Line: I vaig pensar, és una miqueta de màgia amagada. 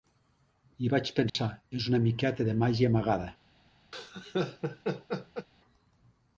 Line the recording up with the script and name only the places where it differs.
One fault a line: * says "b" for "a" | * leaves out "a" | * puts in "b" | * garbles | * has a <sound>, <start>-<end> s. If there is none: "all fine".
* has a dropout, 1.3-1.3 s
* has a laugh, 3.9-5.5 s